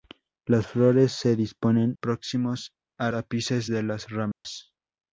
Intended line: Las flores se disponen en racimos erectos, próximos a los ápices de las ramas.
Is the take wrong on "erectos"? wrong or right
wrong